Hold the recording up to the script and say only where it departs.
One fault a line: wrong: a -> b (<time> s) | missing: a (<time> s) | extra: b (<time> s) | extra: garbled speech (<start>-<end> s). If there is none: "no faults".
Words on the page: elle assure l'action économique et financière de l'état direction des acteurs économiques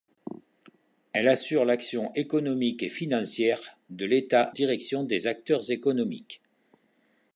no faults